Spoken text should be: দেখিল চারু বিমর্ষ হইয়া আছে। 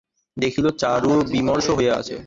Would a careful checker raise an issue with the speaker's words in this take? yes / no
no